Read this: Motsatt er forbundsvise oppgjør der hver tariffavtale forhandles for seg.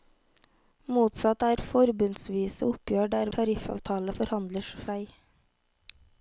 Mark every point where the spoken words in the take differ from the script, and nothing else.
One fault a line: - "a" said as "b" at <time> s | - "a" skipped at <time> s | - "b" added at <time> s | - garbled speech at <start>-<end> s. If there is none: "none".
- "hver" skipped at 3.3 s
- "for" skipped at 4.7 s